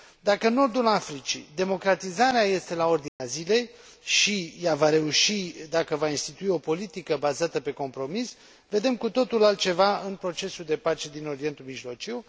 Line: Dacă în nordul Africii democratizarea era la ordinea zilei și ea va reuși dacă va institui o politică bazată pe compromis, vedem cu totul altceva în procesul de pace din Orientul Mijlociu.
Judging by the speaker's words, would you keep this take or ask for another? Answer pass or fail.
fail